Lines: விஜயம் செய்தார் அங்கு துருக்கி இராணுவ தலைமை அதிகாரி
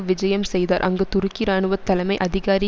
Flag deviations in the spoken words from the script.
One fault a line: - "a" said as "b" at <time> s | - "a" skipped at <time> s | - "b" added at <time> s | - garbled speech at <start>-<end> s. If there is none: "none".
none